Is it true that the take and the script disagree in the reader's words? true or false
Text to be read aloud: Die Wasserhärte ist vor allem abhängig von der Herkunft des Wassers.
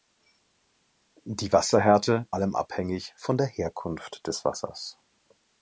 true